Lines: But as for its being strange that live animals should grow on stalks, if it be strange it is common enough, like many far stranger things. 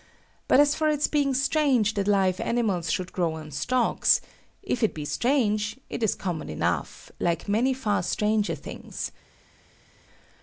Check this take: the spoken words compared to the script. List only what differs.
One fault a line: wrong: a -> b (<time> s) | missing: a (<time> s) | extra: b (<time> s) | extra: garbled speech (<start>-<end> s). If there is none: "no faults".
no faults